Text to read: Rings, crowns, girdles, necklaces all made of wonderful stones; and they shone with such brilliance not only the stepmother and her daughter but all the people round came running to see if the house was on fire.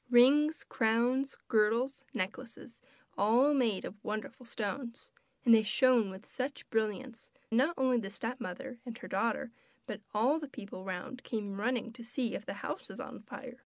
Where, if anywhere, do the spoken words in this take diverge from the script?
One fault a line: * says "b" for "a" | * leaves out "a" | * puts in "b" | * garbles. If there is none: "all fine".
all fine